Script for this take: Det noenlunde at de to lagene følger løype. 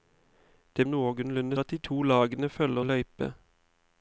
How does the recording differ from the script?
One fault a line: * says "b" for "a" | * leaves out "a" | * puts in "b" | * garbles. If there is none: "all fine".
all fine